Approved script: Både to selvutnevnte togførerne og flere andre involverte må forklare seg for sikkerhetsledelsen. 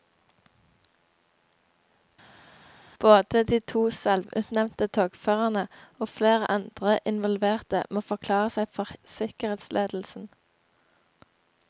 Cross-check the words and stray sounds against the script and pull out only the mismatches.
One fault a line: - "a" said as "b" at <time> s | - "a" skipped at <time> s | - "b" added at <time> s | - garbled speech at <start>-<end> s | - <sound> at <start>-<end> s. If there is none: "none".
- "de" added at 3.4 s